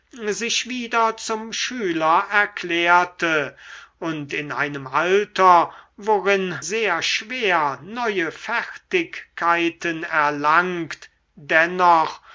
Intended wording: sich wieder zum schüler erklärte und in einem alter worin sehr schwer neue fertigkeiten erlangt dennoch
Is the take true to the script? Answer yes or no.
yes